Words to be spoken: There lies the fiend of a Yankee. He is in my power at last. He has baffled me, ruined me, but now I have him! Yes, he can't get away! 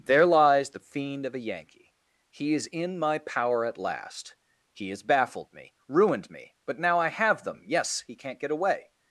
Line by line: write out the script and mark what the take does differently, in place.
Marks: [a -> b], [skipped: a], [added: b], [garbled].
There lies the fiend of a Yankee. He is in my power at last. He has baffled me, ruined me, but now I have [him! -> them] Yes, he can't get away!